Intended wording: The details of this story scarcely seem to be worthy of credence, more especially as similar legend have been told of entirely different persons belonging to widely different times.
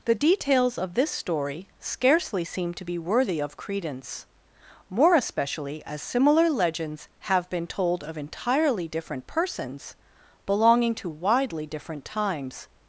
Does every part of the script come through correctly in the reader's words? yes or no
no